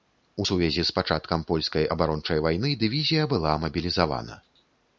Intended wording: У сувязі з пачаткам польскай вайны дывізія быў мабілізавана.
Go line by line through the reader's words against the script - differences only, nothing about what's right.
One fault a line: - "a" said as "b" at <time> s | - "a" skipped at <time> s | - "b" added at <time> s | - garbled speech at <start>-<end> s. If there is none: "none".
- "абарончай" added at 1.9 s
- "быў" said as "была" at 3.4 s